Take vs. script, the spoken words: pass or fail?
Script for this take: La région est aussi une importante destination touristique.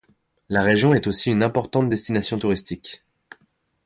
pass